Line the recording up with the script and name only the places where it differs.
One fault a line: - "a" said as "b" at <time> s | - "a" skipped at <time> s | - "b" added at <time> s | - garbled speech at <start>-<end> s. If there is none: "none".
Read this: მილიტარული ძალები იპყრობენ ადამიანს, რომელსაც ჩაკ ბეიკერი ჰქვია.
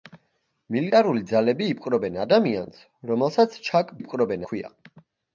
- "ბეიკერი" said as "იპყრობენ" at 4.0 s